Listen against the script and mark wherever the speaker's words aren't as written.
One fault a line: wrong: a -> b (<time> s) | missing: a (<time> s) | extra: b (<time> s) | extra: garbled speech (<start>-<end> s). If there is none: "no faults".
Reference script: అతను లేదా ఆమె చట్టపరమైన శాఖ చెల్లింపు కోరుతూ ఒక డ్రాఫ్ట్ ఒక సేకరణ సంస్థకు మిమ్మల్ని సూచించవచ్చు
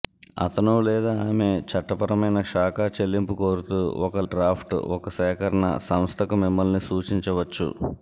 no faults